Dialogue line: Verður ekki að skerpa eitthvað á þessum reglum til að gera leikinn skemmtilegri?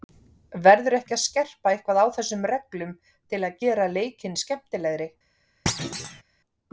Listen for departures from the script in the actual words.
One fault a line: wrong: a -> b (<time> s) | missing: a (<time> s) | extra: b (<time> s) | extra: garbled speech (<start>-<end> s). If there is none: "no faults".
no faults